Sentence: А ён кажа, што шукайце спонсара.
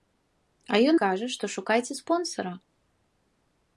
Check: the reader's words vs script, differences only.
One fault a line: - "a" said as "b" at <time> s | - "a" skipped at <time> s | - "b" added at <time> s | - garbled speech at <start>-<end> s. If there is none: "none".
none